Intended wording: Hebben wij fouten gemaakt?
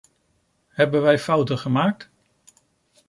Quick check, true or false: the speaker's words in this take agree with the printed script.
true